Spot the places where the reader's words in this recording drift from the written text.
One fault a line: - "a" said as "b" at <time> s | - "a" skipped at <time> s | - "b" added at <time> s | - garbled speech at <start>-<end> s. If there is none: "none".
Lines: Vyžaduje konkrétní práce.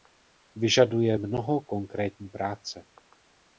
- "mnoho" added at 1.1 s